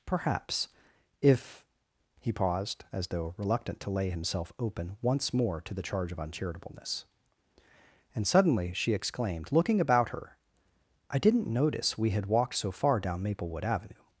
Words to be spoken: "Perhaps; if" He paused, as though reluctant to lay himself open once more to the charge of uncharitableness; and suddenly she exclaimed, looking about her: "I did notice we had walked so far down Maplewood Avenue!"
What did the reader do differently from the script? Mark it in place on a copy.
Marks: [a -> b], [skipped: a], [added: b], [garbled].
"Perhaps; if" He paused, as though reluctant to lay himself open once more to the charge of uncharitableness; and suddenly she exclaimed, looking about her: "I [did -> didn't] notice we had walked so far down Maplewood Avenue!"